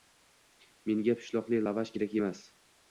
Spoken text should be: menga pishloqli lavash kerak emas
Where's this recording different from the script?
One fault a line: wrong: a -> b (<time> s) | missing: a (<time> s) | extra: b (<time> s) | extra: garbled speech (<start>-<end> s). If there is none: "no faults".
no faults